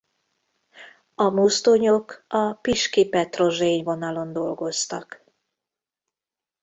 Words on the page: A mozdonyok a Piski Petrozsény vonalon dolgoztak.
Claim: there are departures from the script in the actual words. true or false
false